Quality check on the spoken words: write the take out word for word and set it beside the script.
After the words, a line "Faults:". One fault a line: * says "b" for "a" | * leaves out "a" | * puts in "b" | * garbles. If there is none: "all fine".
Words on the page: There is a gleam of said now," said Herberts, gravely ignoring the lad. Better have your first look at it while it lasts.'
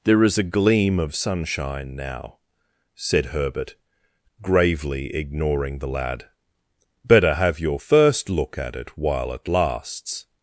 There is a gleam of sunshine now," said Herbert, gravely ignoring the lad. Better have your first look at it while it lasts.'
Faults:
* says "sunshine" for "said"
* says "Herbert" for "Herberts"